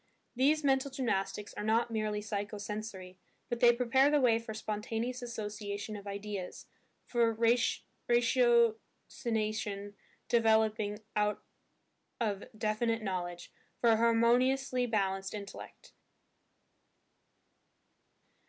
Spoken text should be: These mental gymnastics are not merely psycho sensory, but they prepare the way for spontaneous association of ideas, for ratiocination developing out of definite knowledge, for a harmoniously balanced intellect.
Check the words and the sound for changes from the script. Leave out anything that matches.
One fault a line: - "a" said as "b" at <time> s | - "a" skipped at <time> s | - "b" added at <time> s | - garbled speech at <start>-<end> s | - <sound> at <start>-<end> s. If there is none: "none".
none